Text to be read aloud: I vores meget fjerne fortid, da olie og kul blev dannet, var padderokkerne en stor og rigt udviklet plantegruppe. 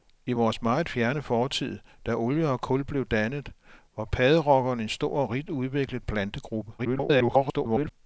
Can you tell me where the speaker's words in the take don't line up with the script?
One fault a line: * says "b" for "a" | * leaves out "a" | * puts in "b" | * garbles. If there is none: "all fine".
* garbles